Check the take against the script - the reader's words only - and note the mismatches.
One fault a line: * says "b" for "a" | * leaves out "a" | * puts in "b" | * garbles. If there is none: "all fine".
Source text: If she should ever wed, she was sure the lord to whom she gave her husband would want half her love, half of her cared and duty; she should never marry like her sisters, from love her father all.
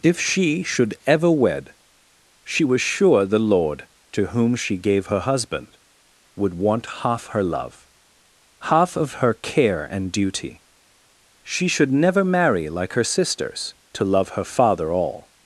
* says "care" for "cared"
* says "to" for "from"